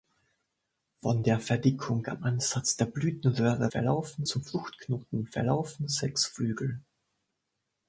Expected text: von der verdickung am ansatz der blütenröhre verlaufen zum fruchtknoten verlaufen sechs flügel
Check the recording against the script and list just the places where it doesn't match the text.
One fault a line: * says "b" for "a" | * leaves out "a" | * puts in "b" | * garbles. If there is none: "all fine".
all fine